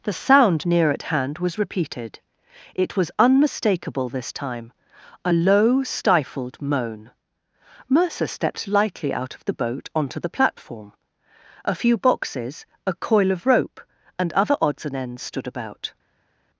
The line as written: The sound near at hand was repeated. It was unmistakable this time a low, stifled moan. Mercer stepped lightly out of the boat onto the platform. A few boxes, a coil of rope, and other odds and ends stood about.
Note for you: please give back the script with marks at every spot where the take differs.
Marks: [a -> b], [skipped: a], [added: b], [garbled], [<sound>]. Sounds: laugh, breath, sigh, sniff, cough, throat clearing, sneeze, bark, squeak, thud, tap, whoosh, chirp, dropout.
The sound near at hand was repeated. It was unmistakable this time a low, stifled moan. Mercer stepped lightly out of the boat onto the platform. A few boxes, a coil of rope, and other odds and ends stood about.